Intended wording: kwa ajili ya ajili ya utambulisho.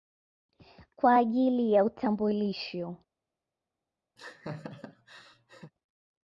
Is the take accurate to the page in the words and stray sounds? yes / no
no